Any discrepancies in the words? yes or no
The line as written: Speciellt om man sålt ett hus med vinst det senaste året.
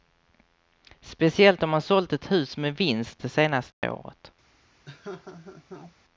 no